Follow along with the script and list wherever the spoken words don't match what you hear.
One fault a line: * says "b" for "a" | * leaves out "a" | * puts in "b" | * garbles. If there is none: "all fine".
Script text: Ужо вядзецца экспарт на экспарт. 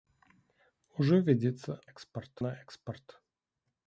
all fine